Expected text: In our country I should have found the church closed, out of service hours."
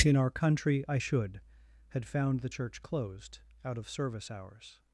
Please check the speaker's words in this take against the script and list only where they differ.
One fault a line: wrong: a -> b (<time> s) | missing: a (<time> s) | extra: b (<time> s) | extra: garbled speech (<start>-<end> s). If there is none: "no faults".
wrong: have -> had (1.9 s)